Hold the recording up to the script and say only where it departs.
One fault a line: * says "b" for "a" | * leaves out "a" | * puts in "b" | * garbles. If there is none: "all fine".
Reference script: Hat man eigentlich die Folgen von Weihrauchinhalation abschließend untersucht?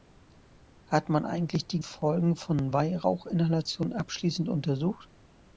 all fine